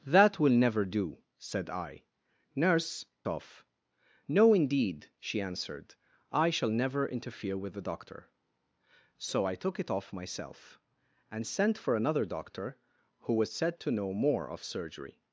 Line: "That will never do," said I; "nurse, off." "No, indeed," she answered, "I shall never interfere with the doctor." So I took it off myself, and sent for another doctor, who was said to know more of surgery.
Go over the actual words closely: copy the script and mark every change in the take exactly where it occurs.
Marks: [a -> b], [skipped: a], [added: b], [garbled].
"That will never do," said I; "nurse, off." "No, indeed," she answered, "I shall never interfere with the doctor." So I took it off myself, and sent for another doctor, who was said to know more of surgery.